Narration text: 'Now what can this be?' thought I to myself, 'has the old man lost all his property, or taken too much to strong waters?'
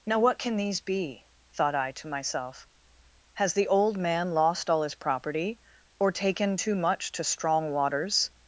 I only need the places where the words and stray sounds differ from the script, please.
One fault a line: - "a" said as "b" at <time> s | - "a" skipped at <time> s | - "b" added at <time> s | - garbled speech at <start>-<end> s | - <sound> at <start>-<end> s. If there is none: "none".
- "this" said as "these" at 0.6 s